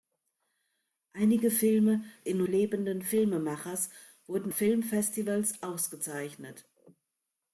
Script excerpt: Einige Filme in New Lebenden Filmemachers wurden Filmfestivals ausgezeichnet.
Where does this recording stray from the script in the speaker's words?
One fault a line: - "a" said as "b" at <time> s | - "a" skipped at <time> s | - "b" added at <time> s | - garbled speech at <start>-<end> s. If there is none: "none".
none